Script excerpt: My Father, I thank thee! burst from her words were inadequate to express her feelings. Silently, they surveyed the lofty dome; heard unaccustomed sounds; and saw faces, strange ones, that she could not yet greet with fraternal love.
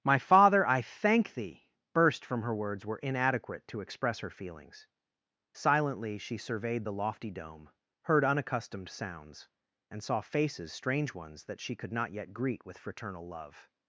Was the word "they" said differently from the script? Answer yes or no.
yes